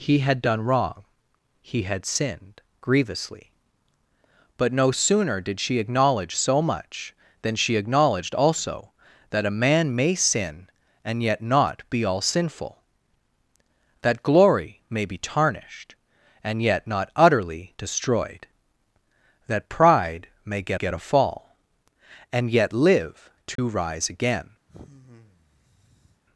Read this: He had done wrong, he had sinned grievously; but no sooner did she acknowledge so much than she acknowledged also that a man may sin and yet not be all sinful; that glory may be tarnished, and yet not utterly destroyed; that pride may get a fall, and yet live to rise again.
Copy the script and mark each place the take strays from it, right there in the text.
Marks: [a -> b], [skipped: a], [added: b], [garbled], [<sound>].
He had done wrong, he had sinned grievously; but no sooner did she acknowledge so much than she acknowledged also that a man may sin and yet not be all sinful; that glory may be tarnished, and yet not utterly destroyed; that pride may get [added: get] a fall, and yet live to [dropout] rise again. [sigh]